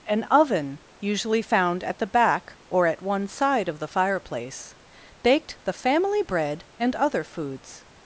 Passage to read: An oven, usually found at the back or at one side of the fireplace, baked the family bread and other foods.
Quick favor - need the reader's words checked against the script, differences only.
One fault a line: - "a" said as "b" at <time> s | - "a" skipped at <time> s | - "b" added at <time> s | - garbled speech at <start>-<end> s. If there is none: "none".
none